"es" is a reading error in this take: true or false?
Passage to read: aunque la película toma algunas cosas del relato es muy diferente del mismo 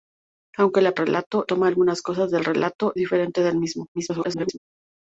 true